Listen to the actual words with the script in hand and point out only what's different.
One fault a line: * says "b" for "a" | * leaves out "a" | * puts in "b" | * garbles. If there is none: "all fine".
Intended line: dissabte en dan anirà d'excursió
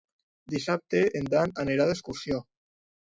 all fine